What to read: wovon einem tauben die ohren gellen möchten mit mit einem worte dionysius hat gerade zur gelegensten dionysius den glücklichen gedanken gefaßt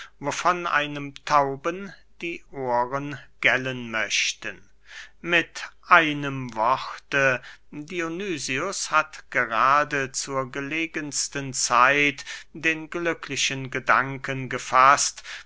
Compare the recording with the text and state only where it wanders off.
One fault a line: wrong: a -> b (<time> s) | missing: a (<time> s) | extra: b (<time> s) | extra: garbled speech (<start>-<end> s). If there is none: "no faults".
missing: mit (5.7 s)
wrong: dionysius -> zeit (11.5 s)